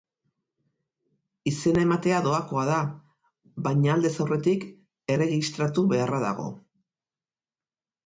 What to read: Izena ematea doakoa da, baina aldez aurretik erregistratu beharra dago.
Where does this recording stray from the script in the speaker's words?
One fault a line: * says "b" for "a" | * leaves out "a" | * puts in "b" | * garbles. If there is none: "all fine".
all fine